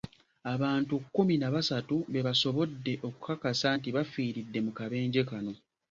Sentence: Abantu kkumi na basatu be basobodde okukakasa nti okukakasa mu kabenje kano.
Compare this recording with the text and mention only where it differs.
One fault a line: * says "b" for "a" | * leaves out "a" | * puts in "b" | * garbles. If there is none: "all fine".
* says "bafiiridde" for "okukakasa"